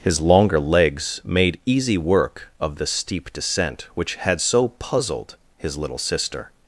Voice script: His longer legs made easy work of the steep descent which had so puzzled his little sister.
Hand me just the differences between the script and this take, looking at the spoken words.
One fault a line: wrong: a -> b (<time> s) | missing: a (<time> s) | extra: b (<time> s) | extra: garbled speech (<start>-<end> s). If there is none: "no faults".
no faults